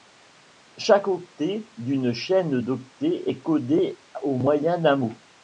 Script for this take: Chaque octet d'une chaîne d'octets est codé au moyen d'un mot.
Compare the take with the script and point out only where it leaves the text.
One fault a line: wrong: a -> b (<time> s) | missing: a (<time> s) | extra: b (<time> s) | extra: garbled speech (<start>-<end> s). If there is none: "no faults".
no faults